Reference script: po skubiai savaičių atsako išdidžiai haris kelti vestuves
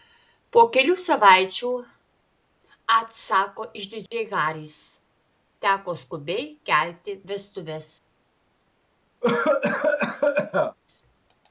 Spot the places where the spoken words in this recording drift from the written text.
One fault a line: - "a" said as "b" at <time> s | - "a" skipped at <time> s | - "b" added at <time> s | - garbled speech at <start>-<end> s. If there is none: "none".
- "skubiai" said as "kelių" at 0.8 s
- "teko skubiai" added at 5.7 s